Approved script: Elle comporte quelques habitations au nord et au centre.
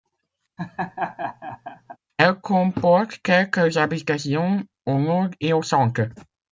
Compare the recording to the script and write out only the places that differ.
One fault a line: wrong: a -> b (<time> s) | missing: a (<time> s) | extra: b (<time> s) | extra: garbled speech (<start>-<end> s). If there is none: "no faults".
no faults